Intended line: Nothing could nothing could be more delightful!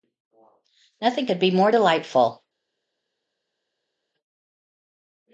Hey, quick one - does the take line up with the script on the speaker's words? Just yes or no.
no